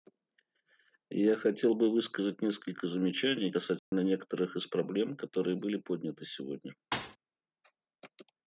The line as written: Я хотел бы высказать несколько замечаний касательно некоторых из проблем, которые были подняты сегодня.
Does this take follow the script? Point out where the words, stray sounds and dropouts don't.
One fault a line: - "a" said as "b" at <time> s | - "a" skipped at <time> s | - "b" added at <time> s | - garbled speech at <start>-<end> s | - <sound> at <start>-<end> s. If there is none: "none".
- dropout at 3.8-3.9 s
- thud at 6.9-7.2 s